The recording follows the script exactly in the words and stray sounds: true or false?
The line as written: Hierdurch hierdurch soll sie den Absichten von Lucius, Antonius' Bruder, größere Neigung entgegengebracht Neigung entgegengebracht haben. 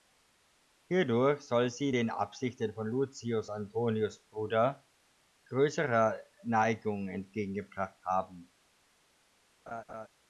false